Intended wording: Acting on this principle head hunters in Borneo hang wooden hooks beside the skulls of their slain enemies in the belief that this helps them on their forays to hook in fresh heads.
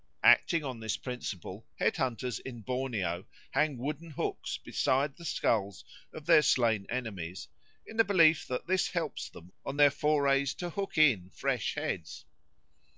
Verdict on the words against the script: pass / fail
pass